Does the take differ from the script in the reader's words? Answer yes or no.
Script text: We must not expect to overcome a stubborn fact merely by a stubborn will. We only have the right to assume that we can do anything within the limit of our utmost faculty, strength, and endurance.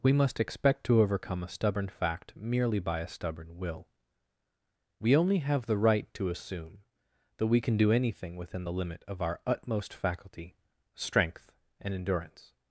yes